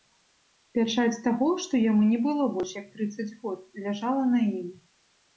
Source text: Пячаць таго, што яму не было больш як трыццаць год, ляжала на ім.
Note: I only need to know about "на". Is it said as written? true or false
true